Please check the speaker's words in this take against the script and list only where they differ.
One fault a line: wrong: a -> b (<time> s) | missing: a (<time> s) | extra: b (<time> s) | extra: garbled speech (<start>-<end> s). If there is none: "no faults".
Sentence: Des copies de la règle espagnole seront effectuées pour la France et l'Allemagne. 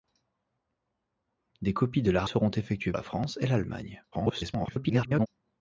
missing: règle espagnole (2.2 s)
missing: pour (2.9 s)
extra: garbled speech (4.1-5.3 s)